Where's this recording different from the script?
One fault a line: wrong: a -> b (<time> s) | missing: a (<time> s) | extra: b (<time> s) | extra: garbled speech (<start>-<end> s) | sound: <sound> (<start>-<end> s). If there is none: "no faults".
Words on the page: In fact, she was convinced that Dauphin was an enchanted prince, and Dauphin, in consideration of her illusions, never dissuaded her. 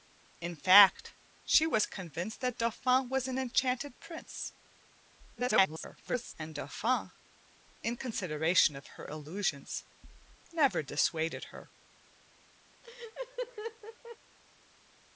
extra: garbled speech (5.3-6.3 s)
sound: laugh (12.8-14.2 s)